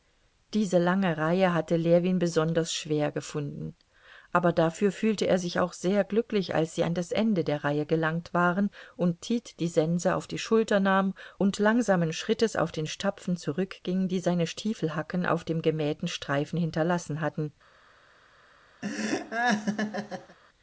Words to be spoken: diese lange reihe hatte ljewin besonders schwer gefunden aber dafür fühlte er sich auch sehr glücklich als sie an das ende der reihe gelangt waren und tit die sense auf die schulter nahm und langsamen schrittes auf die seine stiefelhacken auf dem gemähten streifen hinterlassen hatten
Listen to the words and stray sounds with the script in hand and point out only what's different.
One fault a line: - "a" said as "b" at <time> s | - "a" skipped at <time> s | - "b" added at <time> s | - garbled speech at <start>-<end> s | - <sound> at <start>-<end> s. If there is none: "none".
- "den stapfen zurückging" added at 12.7 s
- laugh at 18.8-20.4 s